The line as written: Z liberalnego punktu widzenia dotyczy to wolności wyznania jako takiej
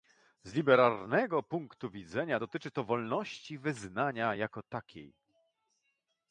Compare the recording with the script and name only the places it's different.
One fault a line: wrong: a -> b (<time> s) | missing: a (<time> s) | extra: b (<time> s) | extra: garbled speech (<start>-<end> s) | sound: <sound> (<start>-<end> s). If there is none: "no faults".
no faults